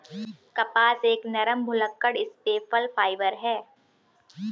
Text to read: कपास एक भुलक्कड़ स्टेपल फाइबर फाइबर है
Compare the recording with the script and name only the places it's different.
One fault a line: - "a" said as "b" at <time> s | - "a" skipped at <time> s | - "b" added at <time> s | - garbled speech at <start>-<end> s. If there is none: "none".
- "नरम" added at 1.3 s
- "फाइबर" skipped at 3.3 s